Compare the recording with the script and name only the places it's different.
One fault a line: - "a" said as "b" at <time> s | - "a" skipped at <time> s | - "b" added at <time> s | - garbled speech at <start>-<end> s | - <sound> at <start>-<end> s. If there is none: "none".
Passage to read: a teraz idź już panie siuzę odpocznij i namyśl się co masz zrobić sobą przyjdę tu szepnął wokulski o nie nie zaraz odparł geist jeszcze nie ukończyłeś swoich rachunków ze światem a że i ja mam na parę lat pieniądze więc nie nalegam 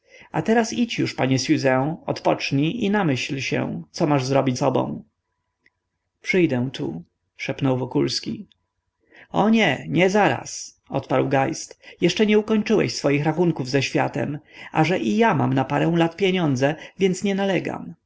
none